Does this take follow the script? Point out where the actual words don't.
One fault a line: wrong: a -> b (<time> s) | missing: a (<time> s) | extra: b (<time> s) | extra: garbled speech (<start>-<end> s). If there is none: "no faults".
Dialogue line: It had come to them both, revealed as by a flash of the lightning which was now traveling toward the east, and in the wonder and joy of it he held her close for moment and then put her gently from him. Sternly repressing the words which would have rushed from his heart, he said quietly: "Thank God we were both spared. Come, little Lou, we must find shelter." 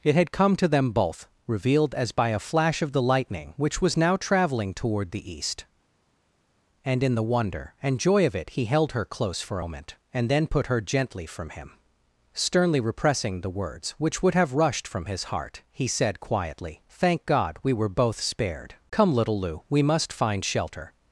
no faults